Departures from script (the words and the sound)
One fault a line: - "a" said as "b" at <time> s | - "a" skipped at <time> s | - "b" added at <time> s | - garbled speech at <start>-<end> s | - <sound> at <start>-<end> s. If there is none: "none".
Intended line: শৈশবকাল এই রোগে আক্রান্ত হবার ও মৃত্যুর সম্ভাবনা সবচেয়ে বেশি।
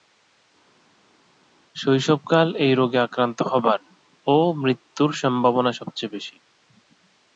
none